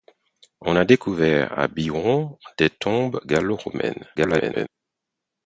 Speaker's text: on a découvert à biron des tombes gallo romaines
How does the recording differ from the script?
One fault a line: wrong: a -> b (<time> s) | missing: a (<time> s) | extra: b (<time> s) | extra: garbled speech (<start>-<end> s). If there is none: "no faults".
extra: garbled speech (4.2-4.7 s)